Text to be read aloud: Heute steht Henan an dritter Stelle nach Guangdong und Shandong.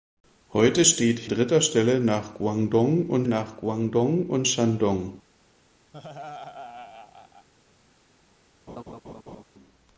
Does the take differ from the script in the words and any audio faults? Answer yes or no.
yes